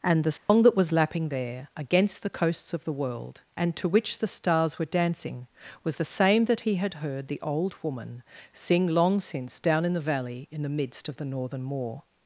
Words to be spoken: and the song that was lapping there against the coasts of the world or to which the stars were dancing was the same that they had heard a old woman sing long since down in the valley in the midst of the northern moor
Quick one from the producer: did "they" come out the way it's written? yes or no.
no